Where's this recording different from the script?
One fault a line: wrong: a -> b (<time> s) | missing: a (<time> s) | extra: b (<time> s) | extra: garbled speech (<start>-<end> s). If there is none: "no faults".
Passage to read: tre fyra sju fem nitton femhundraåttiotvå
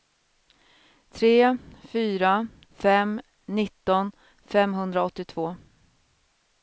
missing: sju (2.5 s)